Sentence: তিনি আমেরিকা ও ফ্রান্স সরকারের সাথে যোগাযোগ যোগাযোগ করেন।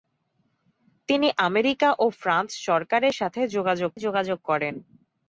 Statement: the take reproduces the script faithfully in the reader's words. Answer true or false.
true